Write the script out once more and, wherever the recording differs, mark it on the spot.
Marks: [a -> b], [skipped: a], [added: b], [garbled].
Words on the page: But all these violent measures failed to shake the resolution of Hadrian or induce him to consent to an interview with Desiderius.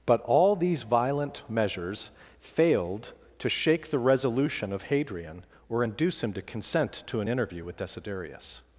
But all these violent measures failed to shake the resolution of Hadrian or induce him to consent to an interview with Desiderius.